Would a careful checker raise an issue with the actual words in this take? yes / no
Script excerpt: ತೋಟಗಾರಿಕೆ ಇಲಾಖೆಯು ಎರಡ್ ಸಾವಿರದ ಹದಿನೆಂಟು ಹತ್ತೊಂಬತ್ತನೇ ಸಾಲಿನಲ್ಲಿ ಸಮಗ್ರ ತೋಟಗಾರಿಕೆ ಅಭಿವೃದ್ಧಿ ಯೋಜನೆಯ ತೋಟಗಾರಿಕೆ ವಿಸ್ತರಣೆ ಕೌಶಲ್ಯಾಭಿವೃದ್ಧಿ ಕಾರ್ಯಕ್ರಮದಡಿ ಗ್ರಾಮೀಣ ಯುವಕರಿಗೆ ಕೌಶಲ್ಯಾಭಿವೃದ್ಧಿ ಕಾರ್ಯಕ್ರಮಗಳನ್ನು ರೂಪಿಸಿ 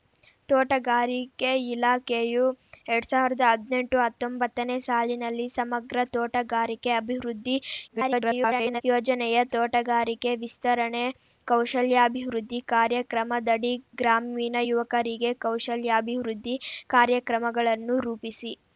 yes